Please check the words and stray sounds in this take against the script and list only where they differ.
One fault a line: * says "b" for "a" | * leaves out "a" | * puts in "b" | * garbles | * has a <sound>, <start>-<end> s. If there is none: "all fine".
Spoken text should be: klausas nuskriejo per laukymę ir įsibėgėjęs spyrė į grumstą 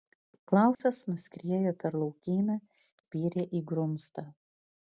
* has a dropout, 0.7-0.8 s
* leaves out "ir įsibėgėjęs"